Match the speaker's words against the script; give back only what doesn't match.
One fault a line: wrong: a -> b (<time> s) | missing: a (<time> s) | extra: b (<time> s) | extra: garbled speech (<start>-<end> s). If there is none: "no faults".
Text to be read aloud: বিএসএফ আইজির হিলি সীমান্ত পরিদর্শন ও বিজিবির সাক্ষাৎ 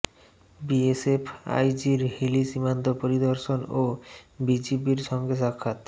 extra: সঙ্গে (5.1 s)